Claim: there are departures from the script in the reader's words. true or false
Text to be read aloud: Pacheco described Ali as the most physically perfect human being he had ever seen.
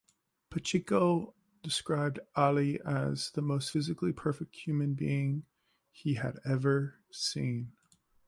false